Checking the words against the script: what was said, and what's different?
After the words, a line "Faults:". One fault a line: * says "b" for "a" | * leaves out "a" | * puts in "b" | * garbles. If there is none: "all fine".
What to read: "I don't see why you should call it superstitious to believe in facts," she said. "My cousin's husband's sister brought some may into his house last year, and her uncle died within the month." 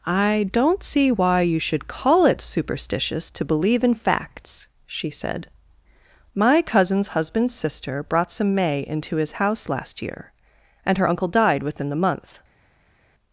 "I don't see why you should call it superstitious to believe in facts," she said. "My cousin's husband's sister brought some may into his house last year, and her uncle died within the month."
Faults:
all fine